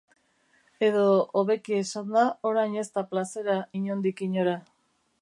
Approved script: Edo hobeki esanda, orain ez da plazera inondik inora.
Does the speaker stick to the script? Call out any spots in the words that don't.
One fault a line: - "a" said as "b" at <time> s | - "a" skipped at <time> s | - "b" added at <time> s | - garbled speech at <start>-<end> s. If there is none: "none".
none